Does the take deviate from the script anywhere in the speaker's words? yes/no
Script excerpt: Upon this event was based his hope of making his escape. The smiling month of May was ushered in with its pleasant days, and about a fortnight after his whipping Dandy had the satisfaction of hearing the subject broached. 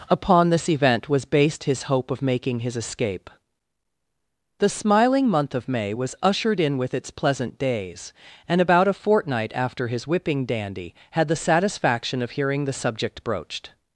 no